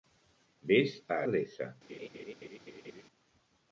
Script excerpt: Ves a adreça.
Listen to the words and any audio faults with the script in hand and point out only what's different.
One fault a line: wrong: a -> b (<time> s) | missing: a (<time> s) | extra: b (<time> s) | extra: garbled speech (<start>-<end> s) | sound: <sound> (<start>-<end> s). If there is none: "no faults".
sound: laugh (1.9-3.0 s)